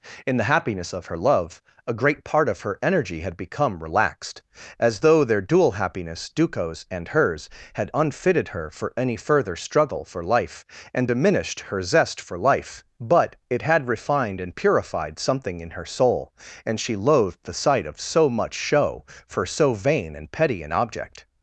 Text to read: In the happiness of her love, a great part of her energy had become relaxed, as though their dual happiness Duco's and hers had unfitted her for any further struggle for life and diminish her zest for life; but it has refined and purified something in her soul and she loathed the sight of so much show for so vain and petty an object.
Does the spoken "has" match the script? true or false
false